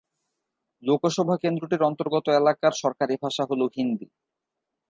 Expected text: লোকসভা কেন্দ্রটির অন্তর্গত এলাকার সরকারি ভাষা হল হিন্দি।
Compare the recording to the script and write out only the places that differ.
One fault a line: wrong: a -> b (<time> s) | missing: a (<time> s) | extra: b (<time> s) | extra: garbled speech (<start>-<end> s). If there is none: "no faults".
no faults